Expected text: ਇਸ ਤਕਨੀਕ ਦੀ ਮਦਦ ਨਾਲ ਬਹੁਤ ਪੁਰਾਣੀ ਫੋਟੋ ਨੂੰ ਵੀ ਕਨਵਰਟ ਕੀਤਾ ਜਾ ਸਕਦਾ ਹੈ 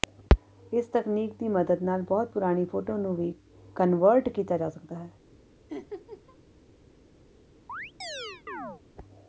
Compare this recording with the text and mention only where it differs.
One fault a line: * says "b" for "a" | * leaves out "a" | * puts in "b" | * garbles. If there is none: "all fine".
all fine